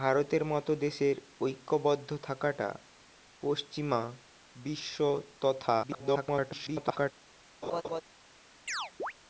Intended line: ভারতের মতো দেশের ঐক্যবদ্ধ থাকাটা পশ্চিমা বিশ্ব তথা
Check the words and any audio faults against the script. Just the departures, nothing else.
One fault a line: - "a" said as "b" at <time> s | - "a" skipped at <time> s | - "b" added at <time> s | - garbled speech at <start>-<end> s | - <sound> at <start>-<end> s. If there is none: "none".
- garbled speech at 5.8-7.1 s
- laugh at 7.6-8.0 s
- chirp at 8.7-9.1 s